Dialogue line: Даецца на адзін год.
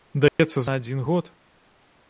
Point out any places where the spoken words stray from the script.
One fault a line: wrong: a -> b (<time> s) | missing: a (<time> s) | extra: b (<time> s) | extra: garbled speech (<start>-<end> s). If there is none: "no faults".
no faults